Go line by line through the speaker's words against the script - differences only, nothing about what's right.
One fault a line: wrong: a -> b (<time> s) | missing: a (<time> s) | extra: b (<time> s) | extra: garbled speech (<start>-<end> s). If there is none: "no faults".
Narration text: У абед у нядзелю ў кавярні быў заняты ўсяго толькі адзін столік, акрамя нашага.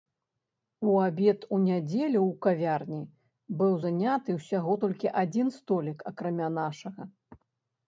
no faults